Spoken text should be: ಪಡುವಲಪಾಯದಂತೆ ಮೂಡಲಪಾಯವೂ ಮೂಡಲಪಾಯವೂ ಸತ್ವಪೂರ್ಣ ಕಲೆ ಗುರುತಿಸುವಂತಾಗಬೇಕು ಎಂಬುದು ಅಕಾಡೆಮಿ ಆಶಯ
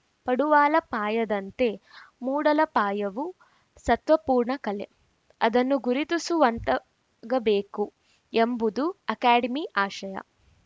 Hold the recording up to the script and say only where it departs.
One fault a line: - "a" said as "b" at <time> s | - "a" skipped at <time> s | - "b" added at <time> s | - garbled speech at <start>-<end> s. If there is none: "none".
- "ಮೂಡಲಪಾಯವೂ" skipped at 3.4 s
- "ಅದನ್ನು" added at 5.4 s